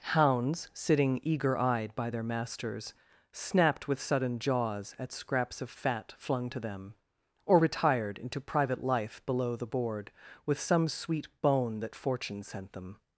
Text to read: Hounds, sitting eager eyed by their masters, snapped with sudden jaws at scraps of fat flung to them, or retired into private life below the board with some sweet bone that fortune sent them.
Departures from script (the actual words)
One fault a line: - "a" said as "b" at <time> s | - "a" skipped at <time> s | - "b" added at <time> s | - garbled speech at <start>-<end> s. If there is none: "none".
none